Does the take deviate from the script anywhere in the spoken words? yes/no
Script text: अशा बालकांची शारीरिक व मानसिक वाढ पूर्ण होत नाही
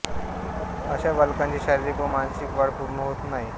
no